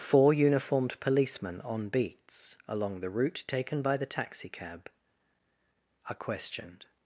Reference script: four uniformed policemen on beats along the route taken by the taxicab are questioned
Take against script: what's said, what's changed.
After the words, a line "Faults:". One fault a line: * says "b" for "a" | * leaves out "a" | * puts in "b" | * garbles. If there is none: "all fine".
four uniformed policemen on beats along the route taken by the taxicab are questioned
Faults:
all fine